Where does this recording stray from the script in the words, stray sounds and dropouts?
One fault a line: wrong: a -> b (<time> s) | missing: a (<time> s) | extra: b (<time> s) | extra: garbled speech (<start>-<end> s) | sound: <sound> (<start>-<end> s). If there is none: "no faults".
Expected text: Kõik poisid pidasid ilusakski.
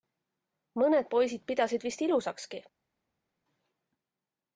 wrong: Kõik -> Mõned (0.8 s)
extra: vist (1.9 s)